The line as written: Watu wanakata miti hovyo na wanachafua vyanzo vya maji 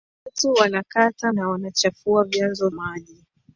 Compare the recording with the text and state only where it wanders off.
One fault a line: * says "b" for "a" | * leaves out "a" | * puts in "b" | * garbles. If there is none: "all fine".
* leaves out "miti hovyo"
* leaves out "vya"